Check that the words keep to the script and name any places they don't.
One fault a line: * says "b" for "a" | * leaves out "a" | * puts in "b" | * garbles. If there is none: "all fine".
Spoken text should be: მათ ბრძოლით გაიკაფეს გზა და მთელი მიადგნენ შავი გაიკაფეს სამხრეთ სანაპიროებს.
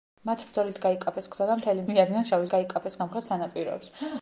all fine